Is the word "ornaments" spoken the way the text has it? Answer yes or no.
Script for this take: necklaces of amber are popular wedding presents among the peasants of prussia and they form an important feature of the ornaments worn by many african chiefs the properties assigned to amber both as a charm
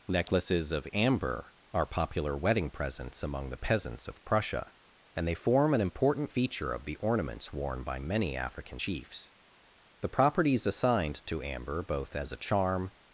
yes